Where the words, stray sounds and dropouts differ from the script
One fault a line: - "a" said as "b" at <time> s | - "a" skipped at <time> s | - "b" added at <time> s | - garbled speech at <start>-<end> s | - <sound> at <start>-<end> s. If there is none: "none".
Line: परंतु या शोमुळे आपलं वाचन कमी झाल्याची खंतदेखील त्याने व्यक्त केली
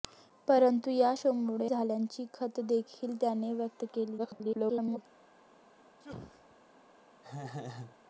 - "आपलं वाचन कमी" skipped at 1.7 s
- garbled speech at 4.2-5.0 s
- sneeze at 6.0-6.6 s
- laugh at 7.2-8.0 s